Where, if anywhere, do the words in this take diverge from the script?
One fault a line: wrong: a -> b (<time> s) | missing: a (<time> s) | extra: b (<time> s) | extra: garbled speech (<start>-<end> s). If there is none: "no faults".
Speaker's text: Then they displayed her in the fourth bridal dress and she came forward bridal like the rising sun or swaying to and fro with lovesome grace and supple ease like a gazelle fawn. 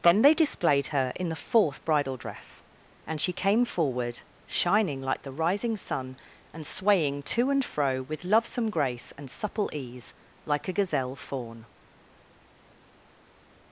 wrong: bridal -> shining (4.5 s)
wrong: or -> and (6.5 s)